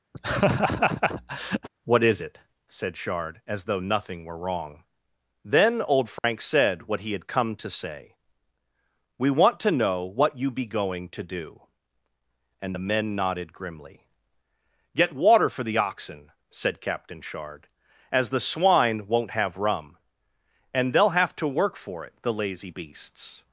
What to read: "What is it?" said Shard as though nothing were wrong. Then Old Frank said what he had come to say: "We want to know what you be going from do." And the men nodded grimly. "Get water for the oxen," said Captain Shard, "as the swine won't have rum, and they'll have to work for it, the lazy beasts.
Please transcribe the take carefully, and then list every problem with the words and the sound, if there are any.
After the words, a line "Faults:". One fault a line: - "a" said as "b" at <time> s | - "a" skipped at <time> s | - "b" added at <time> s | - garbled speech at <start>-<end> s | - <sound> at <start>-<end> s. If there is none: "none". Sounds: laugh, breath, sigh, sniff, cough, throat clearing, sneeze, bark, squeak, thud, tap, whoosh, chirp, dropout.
"What is it?" said Shard as though nothing were wrong. Then Old Frank said what he had come to say: "We want to know what you be going to do." And the men nodded grimly. "Get water for the oxen," said Captain Shard, "as the swine won't have rum, and they'll have to work for it, the lazy beasts.
Faults:
- laugh at 0.1-1.7 s
- dropout at 6.2-6.2 s
- "from" said as "to" at 11.1 s